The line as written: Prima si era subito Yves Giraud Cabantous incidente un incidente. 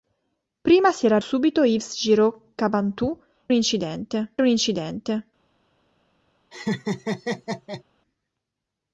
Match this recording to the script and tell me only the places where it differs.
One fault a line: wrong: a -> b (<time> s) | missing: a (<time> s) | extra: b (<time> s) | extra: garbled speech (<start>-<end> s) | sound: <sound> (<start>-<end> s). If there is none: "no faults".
sound: laugh (6.5-7.8 s)